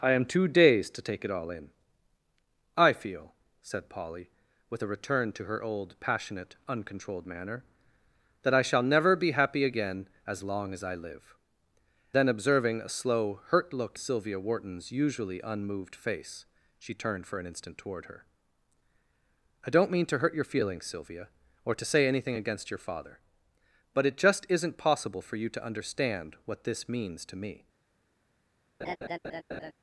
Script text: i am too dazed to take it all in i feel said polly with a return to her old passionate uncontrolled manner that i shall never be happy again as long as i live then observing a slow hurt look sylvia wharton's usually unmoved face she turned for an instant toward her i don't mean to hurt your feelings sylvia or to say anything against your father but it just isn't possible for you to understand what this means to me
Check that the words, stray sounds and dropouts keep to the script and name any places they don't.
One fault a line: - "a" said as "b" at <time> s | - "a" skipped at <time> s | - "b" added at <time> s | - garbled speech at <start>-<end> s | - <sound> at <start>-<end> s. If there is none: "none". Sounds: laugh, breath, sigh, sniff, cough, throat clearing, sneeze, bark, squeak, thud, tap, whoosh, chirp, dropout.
- laugh at 28.8-29.7 s